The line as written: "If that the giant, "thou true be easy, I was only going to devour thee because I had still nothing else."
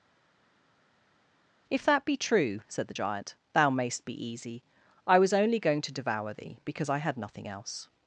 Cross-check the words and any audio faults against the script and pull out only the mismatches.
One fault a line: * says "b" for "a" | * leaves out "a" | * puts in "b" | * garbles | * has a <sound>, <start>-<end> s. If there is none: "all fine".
* puts in "be true said"
* says "mayst" for "true"
* leaves out "still"